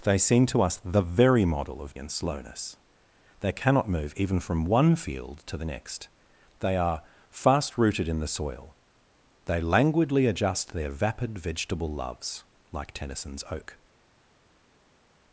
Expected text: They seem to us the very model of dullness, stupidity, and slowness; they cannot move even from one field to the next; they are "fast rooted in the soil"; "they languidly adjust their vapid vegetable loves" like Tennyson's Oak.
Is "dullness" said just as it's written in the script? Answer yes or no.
no